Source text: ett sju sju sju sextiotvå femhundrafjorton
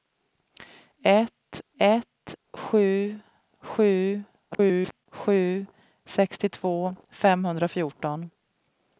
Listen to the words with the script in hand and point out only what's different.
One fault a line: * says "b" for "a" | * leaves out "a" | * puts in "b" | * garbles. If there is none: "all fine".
* puts in "ett"
* garbles